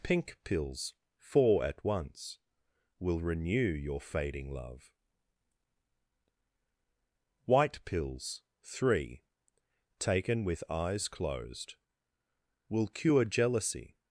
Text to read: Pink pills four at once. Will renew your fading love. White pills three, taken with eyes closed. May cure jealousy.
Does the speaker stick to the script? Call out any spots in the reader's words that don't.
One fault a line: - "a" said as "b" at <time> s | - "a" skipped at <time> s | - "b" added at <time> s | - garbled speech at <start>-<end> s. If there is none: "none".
- "May" said as "Will" at 12.7 s